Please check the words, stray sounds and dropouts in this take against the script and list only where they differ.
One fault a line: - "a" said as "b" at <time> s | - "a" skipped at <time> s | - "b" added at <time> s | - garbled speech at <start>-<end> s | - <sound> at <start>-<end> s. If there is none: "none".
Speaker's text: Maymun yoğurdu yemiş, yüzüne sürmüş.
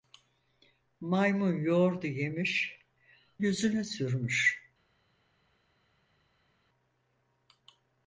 none